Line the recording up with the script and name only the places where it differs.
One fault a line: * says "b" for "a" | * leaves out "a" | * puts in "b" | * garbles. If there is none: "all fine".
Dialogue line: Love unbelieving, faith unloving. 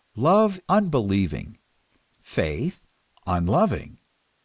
all fine